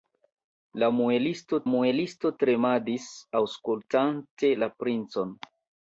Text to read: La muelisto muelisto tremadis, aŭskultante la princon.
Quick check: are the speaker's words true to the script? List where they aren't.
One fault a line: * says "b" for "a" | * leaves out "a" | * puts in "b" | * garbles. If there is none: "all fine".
all fine